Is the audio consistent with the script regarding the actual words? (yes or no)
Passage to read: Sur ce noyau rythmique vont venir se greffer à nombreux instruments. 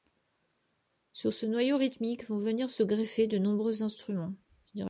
no